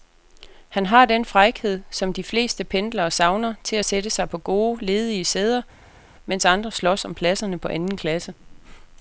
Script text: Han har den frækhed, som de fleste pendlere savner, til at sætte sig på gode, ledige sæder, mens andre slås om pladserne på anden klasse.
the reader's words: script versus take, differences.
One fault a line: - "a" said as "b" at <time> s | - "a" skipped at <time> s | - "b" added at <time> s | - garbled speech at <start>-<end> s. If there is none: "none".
none